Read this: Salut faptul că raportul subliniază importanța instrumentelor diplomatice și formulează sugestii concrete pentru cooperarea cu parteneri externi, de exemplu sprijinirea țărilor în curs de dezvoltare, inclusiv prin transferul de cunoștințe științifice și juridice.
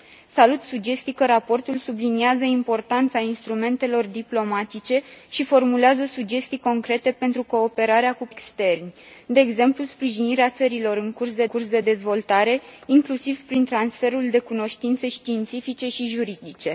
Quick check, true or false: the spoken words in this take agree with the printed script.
false